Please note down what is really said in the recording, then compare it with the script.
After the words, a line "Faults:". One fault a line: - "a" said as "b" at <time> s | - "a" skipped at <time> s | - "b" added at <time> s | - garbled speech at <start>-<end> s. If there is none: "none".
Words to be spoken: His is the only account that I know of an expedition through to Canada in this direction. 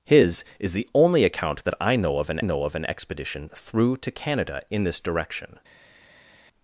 His is the only account that I know of an know of an expedition through to Canada in this direction.
Faults:
- "know of an" added at 2.4 s